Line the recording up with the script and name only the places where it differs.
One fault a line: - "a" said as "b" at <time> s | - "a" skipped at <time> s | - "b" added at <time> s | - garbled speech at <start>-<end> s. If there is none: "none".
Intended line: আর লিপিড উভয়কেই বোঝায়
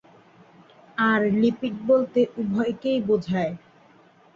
- "বলতে" added at 1.9 s